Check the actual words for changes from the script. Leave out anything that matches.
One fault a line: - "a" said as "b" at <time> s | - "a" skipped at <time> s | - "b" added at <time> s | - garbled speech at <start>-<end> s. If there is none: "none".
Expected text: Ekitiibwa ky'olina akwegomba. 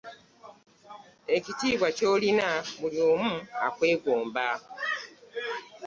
- "buli omu" added at 2.8 s